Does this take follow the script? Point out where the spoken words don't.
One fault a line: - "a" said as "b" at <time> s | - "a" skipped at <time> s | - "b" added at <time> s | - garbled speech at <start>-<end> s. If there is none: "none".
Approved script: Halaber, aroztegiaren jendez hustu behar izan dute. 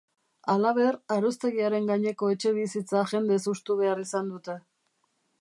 - "gaineko etxebizitza" added at 1.9 s